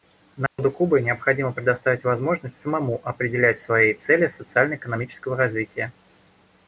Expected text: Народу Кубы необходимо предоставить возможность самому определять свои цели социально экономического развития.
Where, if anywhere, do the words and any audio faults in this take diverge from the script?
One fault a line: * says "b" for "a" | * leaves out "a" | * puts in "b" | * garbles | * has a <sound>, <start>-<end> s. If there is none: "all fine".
* has a dropout, 0.5-0.6 s